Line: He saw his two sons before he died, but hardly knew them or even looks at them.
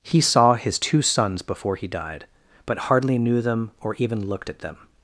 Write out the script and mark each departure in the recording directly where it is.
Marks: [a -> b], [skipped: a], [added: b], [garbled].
He saw his two sons before he died, but hardly knew them or even [looks -> looked] at them.